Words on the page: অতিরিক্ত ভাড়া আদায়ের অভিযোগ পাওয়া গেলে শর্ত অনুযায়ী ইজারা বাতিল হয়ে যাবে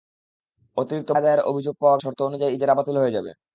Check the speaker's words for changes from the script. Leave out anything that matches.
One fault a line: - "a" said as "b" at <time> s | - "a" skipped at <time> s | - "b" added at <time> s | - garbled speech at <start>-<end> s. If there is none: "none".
- "ভাড়া" skipped at 1.1 s
- "গেলে" skipped at 2.0 s